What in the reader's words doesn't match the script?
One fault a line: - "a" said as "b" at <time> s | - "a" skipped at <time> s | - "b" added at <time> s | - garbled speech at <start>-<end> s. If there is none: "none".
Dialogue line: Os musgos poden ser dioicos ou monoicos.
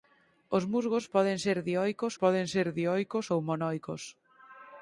- "poden ser dioicos" added at 2.2 s